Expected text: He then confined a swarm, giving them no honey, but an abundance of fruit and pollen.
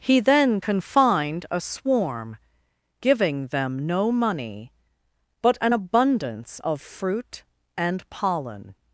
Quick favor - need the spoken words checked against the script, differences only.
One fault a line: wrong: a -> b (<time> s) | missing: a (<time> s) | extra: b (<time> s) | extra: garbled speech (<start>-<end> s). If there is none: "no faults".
wrong: honey -> money (4.1 s)